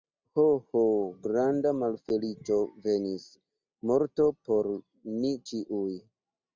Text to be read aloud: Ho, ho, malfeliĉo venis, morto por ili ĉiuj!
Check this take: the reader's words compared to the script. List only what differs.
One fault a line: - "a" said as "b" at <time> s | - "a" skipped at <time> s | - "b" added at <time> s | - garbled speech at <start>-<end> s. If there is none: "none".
- "granda" added at 1.2 s
- "ili" said as "ni" at 5.2 s